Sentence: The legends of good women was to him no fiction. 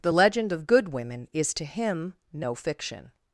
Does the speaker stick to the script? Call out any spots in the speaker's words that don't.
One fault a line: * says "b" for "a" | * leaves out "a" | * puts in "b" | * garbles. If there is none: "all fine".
* says "legend" for "legends"
* says "is" for "was"